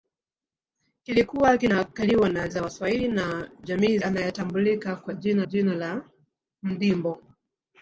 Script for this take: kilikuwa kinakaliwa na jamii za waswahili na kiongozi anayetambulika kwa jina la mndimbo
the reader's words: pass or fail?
fail